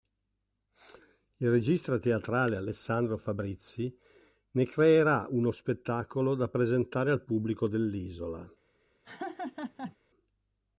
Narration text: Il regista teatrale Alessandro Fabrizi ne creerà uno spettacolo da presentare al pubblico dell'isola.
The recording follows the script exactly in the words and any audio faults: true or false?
false